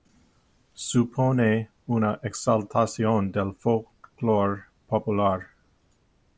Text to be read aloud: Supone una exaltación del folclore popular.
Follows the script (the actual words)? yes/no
yes